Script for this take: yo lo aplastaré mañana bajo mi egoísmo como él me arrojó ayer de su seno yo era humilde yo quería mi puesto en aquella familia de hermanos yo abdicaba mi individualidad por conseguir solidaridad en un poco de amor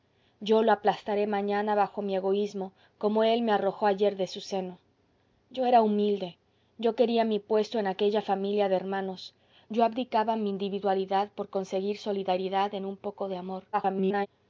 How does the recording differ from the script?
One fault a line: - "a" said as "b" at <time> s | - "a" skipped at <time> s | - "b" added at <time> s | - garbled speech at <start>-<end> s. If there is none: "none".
- garbled speech at 13.7-14.3 s